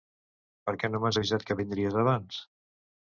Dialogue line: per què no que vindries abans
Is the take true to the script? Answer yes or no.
no